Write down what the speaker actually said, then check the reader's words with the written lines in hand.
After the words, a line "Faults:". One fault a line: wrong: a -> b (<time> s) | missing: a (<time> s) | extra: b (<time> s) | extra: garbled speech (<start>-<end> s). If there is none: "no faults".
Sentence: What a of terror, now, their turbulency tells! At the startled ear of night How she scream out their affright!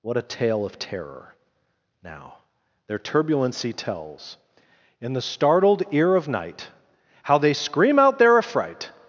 What a tale of terror, now, their turbulency tells! In the startled ear of night How they scream out their affright!
Faults:
extra: tale (0.2 s)
wrong: At -> In (5.0 s)
wrong: she -> they (7.4 s)